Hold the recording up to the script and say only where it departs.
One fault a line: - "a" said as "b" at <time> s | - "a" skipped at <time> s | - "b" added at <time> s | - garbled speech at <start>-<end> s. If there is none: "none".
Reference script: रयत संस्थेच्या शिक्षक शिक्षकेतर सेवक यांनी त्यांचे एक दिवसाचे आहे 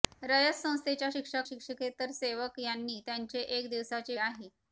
none